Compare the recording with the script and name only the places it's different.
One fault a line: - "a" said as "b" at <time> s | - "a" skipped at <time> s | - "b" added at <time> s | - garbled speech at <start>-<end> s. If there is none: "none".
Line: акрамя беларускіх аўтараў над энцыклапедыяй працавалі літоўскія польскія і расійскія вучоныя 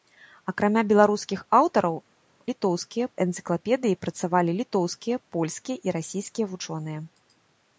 - "над" said as "літоўскія" at 2.5 s